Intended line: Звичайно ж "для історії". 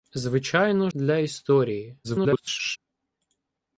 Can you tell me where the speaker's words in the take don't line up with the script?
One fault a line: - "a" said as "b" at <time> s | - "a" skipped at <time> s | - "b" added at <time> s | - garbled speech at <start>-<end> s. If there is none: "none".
- "ж" skipped at 0.9 s
- garbled speech at 2.0-2.8 s